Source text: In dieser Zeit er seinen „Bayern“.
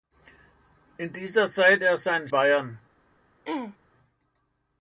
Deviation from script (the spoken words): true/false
false